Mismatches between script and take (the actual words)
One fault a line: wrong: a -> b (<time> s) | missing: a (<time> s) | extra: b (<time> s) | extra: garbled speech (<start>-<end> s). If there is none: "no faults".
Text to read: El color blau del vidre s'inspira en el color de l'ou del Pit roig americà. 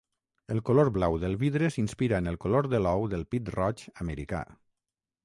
no faults